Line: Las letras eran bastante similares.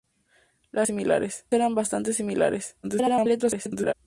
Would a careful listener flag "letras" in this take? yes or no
yes